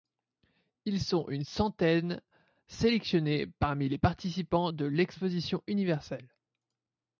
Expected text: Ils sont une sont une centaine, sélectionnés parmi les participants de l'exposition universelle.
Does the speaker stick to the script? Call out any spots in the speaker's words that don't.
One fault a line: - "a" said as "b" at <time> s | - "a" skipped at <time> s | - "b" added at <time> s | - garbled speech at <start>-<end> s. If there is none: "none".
- "sont une" skipped at 1.4 s